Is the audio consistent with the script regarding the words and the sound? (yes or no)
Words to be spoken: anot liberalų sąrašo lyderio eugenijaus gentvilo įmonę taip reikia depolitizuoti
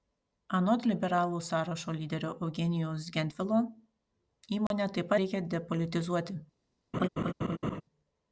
no